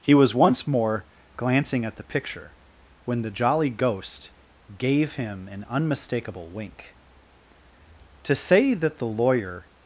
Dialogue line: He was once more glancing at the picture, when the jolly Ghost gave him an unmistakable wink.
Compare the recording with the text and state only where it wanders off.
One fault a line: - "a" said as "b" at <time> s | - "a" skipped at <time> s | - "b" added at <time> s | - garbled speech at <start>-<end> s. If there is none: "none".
- "To say that the lawyer" added at 8.2 s